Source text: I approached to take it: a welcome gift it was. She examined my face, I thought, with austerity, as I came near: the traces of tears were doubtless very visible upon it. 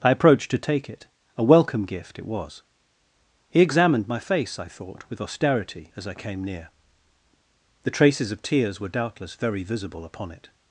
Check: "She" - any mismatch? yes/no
yes